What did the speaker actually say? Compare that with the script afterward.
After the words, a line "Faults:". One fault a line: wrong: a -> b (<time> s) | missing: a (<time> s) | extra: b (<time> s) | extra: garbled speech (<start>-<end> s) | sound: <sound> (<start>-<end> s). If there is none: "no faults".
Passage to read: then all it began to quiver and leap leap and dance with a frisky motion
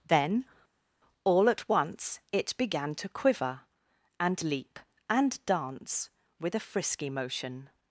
then all at once it began to quiver and leap and dance with a frisky motion
Faults:
extra: at once (1.5 s)
missing: leap (4.8 s)